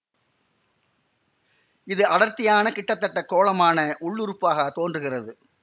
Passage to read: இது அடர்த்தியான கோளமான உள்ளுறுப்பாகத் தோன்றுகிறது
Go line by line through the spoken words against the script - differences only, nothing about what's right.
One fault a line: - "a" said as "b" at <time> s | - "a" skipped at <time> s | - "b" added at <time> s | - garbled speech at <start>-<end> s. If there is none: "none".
- "கிட்டத்தட்ட" added at 2.7 s